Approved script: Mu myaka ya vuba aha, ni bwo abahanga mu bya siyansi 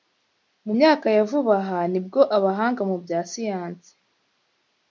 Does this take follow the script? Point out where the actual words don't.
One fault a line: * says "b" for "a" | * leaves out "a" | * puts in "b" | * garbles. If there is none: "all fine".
all fine